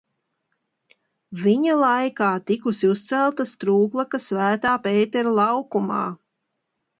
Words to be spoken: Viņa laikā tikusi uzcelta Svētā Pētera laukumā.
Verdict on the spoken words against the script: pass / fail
fail